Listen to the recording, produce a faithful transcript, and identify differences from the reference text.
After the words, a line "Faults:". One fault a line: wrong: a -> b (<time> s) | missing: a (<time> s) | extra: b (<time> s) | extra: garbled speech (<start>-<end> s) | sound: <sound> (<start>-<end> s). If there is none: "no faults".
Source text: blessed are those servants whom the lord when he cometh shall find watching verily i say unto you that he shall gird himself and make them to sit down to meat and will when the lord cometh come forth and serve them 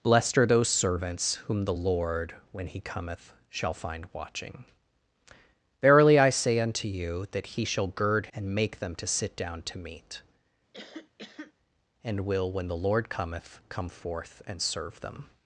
blessed are those servants whom the lord when he cometh shall find watching verily i say unto you that he shall gird and make them to sit down to meat and will when the lord cometh come forth and serve them
Faults:
missing: himself (8.3 s)
sound: cough (10.7-11.5 s)